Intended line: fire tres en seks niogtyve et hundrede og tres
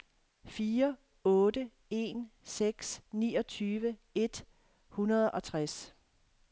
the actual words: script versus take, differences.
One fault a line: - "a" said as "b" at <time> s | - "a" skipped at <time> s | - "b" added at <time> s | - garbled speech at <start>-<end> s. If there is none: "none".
- "tres" said as "otte" at 1.2 s